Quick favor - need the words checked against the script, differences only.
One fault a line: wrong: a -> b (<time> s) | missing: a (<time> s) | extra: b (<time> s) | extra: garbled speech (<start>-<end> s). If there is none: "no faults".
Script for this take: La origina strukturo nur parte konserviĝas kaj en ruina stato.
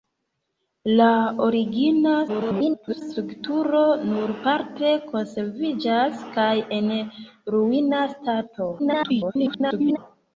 extra: garbled speech (2.3-3.0 s)
extra: garbled speech (8.8-10.0 s)